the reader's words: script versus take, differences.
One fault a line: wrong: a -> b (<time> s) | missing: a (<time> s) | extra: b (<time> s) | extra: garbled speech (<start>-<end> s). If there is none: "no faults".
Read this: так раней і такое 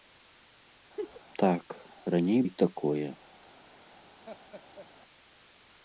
no faults